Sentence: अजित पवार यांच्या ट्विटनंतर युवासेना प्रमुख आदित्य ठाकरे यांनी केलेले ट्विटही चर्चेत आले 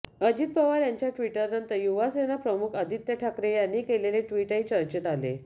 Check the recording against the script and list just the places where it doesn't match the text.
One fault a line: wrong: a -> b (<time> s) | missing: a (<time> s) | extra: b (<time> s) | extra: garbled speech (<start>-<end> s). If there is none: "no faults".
no faults